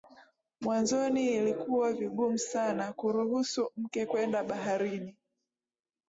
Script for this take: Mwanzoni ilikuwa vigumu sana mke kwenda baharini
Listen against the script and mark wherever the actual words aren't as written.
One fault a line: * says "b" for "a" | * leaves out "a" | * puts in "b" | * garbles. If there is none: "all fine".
* puts in "kuruhusu"